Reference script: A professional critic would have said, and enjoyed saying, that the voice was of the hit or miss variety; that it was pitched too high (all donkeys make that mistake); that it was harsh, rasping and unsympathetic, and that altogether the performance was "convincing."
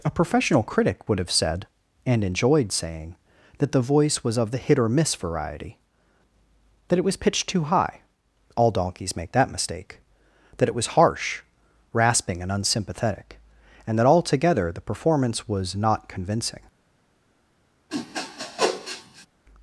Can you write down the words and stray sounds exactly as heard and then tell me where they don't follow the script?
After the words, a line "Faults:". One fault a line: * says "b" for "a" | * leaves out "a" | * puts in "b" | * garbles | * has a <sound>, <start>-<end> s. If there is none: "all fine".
A professional critic would have said, and enjoyed saying, that the voice was of the hit or miss variety; that it was pitched too high (all donkeys make that mistake); that it was harsh, rasping and unsympathetic, and that altogether the performance was "not convincing."
Faults:
* puts in "not"
* has a sniff, 17.9-19.3 s